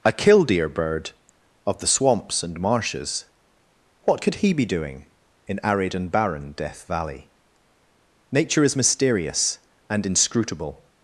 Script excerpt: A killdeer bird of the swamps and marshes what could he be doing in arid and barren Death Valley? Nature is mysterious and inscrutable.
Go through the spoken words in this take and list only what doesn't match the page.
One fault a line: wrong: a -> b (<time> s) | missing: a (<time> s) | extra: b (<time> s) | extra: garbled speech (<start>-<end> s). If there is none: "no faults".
no faults